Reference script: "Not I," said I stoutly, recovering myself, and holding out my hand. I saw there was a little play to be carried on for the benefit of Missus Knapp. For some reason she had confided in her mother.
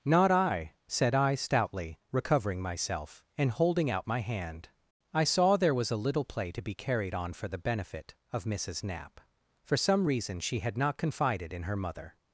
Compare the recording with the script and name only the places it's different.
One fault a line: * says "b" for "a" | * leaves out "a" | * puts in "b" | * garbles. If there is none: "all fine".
* puts in "not"